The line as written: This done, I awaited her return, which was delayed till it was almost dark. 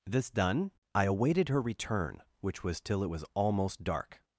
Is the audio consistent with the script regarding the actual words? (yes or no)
no